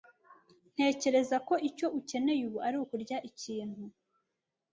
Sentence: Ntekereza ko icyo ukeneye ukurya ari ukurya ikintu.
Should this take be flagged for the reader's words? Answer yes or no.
yes